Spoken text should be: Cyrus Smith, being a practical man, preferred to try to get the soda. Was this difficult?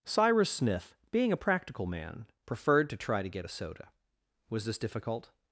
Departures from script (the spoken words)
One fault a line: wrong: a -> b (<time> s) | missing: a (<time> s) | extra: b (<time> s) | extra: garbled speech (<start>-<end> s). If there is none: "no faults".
wrong: the -> a (3.4 s)